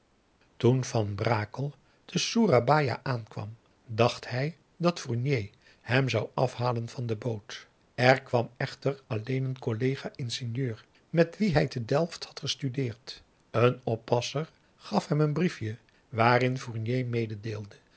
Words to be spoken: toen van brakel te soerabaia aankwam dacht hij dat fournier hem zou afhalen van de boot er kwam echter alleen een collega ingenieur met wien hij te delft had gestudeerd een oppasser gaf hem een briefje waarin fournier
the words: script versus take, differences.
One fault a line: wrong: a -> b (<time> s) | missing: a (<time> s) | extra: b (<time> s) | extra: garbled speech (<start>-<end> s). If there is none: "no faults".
no faults